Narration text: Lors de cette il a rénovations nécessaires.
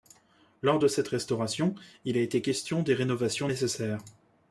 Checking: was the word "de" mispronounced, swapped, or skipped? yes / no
no